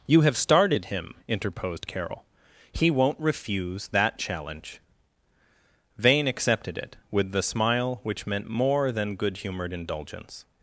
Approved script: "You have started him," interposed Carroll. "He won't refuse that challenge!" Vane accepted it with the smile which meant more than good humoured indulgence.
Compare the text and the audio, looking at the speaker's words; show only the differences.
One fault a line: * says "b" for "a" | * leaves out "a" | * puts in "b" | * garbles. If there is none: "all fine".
all fine